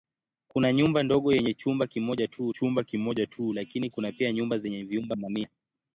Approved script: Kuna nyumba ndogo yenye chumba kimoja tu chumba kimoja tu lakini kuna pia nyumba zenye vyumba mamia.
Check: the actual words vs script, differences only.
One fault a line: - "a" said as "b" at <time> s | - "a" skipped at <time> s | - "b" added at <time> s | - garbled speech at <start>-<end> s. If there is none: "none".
none